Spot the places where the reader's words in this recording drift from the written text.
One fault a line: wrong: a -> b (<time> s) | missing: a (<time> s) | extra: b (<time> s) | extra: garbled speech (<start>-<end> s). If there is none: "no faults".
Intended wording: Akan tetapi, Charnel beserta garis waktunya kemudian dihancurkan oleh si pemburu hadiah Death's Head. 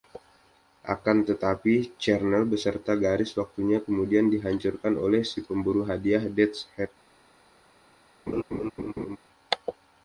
no faults